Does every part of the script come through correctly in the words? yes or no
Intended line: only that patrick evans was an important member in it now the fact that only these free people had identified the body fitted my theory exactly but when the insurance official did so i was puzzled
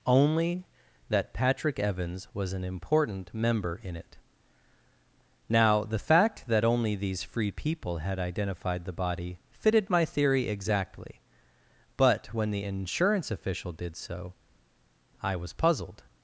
yes